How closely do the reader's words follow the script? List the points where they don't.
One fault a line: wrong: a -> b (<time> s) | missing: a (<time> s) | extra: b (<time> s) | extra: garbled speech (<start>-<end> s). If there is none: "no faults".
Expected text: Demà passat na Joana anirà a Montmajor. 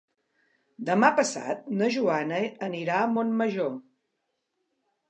no faults